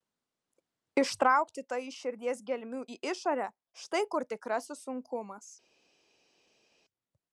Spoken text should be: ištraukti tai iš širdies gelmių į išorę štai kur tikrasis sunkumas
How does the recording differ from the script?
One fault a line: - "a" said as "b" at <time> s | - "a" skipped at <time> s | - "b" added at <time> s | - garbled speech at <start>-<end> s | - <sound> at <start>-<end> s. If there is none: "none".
none